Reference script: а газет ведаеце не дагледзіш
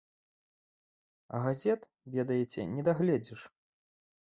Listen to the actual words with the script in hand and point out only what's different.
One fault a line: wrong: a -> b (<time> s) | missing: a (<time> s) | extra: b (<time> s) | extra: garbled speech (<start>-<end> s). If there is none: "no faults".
no faults